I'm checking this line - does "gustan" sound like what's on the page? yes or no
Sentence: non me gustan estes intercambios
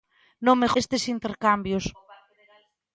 no